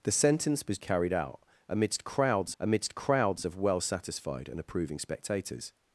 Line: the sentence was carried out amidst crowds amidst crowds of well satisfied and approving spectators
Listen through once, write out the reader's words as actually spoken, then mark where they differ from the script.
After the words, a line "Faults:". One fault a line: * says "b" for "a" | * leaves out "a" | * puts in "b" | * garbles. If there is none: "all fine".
the sentence was carried out amidst crowds amidst crowds of well satisfied and approving spectators
Faults:
all fine